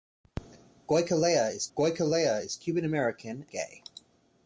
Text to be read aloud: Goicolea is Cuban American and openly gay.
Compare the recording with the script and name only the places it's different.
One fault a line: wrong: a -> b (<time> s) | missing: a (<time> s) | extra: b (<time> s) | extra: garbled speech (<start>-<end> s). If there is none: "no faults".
extra: goicolea is (1.8 s)
missing: and openly (3.5 s)